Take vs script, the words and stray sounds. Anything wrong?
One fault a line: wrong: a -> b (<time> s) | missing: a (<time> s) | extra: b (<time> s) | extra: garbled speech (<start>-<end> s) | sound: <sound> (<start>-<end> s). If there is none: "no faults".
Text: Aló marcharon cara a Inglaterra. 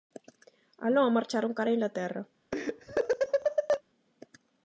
sound: laugh (2.5-3.8 s)